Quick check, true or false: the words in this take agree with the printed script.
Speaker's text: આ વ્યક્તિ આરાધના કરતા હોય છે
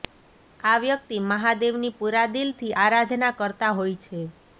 false